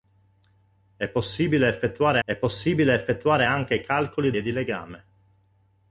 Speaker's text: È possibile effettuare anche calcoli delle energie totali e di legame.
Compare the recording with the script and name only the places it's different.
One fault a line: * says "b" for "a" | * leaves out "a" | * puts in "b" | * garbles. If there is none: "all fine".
* says "è possibile effettuare anche calcoli" for "anche calcoli delle energie totali"